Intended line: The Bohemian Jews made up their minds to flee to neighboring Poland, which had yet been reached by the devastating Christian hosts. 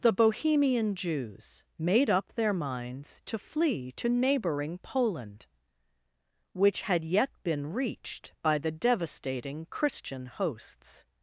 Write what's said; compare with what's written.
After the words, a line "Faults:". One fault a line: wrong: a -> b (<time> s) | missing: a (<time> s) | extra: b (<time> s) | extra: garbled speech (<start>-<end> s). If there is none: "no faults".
The Bohemian Jews made up their minds to flee to neighboring Poland, which had yet been reached by the devastating Christian hosts.
Faults:
no faults